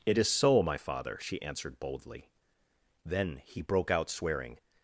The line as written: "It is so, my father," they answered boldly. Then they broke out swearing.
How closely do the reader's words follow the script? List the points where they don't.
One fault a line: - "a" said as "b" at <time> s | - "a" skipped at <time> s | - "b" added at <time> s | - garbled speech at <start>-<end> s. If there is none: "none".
- "they" said as "she" at 1.2 s
- "they" said as "he" at 3.4 s